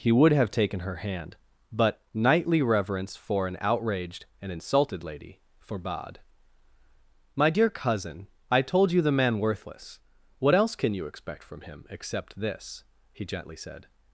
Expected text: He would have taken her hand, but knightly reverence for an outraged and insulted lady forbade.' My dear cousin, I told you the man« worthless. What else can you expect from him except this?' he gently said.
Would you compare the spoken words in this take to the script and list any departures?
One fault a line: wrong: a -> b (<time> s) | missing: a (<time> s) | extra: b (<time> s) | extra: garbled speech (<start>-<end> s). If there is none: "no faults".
no faults